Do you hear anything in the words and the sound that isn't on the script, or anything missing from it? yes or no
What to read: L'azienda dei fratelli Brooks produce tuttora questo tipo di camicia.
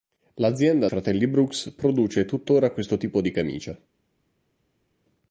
yes